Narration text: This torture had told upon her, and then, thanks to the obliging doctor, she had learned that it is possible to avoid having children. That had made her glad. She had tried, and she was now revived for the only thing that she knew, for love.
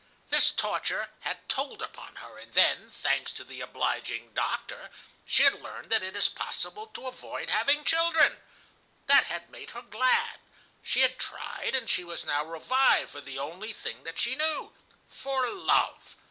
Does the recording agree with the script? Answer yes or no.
yes